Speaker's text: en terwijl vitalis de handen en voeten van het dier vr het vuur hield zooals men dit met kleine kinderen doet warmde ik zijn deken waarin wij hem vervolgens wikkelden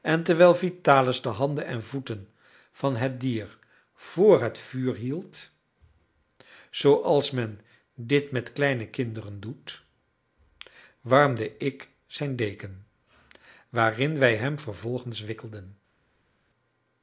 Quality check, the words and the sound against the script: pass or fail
pass